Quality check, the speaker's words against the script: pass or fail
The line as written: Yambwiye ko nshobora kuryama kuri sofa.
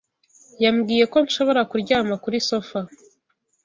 pass